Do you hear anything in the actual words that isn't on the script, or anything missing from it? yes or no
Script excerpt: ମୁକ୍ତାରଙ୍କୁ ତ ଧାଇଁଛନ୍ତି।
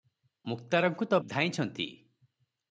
no